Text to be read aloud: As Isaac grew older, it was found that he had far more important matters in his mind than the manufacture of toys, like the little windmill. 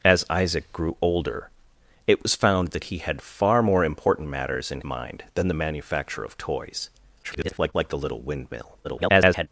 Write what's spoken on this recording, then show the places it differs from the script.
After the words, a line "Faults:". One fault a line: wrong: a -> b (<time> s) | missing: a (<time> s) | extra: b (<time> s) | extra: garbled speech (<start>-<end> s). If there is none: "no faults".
As Isaac grew older, it was found that he had far more important matters in mind than the manufacture of toys, [garbled] like the little windmill. [garbled]
Faults:
missing: his (4.8 s)
extra: garbled speech (7.2-7.7 s)
extra: garbled speech (8.8-9.5 s)